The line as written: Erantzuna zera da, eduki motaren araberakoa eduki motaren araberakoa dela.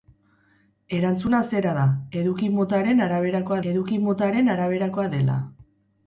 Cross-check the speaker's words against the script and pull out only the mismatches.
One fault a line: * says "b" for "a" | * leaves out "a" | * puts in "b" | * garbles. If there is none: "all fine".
all fine